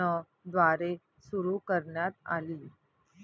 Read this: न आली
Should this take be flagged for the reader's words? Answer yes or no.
yes